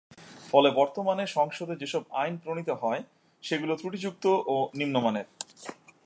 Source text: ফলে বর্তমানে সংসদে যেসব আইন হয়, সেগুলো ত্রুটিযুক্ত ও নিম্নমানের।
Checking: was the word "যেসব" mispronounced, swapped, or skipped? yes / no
no